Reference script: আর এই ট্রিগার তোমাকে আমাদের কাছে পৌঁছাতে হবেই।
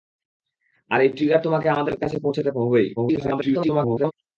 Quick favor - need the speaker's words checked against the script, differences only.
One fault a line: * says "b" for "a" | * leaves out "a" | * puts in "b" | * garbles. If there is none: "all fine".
* garbles